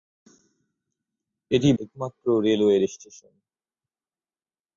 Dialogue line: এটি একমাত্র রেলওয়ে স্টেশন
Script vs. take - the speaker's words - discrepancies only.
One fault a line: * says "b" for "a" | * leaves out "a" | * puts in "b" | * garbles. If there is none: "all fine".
all fine